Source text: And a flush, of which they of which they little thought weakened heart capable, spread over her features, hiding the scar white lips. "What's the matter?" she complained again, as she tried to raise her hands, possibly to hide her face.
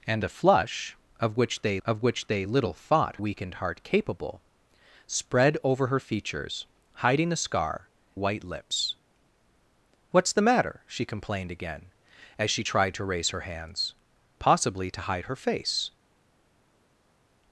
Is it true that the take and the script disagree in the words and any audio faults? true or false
false